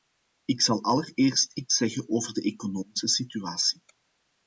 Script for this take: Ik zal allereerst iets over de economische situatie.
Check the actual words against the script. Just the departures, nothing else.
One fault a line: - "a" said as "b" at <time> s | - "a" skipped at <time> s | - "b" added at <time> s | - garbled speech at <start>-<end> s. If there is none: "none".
- "zeggen" added at 1.8 s